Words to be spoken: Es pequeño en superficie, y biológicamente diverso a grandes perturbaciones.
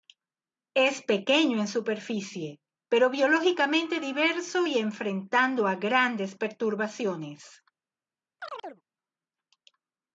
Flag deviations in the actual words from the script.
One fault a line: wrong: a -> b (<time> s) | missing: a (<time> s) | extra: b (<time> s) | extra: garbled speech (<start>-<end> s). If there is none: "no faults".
wrong: y -> pero (2.9 s)
extra: y enfrentando (4.6 s)